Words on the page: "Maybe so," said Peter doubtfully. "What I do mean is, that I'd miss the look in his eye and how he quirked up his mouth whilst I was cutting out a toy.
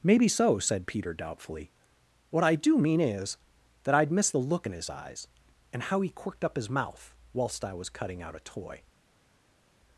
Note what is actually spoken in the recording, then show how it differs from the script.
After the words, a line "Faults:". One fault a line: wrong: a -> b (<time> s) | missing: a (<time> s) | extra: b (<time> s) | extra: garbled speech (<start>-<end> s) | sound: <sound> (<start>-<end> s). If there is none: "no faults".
"Maybe so," said Peter doubtfully. "What I do mean is, that I'd miss the look in his eyes and how he quirked up his mouth whilst I was cutting out a toy.
Faults:
wrong: eye -> eyes (4.9 s)